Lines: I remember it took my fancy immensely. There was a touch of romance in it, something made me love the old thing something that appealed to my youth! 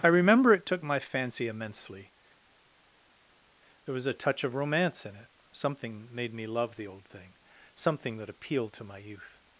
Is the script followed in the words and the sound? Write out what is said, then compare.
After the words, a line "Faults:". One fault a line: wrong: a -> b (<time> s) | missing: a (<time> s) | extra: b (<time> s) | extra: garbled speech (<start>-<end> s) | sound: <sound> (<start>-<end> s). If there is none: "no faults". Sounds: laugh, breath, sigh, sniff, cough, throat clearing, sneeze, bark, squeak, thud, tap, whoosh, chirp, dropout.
I remember it took my fancy immensely. There was a touch of romance in it, something made me love the old thing something that appealed to my youth!
Faults:
no faults